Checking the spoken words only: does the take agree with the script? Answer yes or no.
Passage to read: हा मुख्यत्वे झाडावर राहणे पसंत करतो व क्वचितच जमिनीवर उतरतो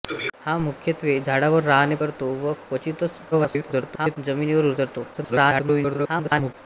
no